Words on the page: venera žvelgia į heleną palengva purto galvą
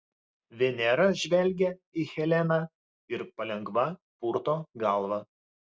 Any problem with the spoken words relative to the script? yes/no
yes